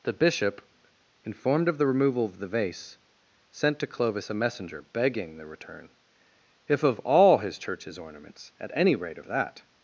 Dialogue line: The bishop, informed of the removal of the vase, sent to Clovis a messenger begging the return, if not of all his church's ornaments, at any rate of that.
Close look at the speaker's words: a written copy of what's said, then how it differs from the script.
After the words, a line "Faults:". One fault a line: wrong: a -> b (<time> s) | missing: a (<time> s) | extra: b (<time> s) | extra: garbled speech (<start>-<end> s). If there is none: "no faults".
The bishop, informed of the removal of the vase, sent to Clovis a messenger begging the return, if of all his church's ornaments, at any rate of that.
Faults:
missing: not (6.8 s)